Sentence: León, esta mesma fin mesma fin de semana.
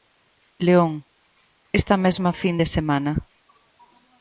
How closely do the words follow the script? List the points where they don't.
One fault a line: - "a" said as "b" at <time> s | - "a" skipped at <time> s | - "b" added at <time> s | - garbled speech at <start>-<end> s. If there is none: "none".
- "mesma fin" skipped at 2.6 s